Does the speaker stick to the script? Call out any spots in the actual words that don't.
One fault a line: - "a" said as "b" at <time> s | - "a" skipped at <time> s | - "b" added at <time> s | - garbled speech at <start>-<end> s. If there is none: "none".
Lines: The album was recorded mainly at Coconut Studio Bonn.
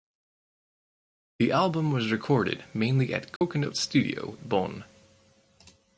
none